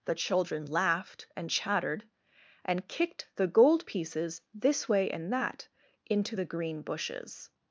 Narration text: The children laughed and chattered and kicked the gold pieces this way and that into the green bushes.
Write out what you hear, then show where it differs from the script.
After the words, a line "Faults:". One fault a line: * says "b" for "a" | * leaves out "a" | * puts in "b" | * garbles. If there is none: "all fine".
The children laughed and chattered and kicked the gold pieces this way and that into the green bushes.
Faults:
all fine